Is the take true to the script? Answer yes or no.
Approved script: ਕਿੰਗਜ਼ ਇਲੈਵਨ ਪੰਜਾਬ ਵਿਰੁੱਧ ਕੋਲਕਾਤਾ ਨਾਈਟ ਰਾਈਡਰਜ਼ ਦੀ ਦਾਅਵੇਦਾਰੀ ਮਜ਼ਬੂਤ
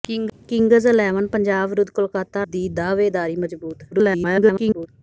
no